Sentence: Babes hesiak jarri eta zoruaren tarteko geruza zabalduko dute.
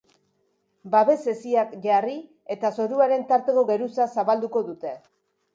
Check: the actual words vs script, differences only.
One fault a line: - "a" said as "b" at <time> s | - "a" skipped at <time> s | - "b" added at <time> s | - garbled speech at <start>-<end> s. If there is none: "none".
none